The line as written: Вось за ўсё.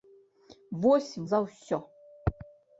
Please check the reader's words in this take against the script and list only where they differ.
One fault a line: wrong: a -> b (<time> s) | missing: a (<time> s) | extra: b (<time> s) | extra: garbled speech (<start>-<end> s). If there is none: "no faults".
no faults